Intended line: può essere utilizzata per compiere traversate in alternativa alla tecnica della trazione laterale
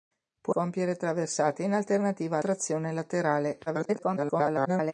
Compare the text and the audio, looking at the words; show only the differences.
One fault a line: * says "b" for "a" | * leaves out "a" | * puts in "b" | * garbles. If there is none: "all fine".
* leaves out "essere utilizzata per"
* leaves out "alla tecnica della"
* garbles